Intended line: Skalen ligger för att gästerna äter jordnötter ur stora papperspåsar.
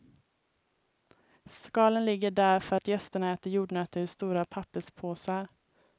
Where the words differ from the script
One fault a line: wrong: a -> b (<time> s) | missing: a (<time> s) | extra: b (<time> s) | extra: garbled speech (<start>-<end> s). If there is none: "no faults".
extra: där (2.3 s)